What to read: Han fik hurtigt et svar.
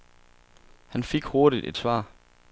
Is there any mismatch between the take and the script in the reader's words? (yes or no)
no